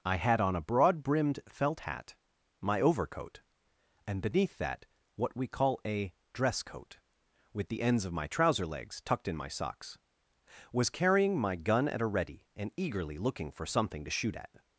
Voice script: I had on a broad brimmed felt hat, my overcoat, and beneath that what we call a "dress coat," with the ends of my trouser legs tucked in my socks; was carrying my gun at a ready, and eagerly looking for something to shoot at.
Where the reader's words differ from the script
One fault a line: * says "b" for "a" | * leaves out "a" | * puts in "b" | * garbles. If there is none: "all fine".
all fine